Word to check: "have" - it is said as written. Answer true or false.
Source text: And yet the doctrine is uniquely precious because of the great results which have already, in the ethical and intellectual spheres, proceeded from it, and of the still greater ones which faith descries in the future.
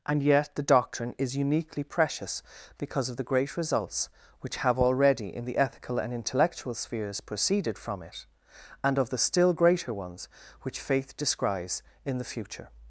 true